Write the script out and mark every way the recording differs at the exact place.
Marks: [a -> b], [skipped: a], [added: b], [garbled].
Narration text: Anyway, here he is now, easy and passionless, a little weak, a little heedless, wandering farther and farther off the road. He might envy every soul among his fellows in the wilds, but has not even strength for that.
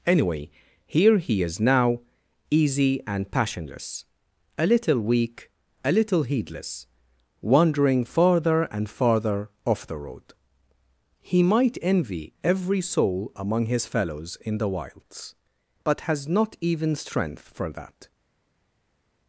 Anyway, here he is now, easy and passionless, a little weak, a little heedless, wandering farther and farther off the road. He might envy every soul among his fellows in the wilds, but has not even strength for that.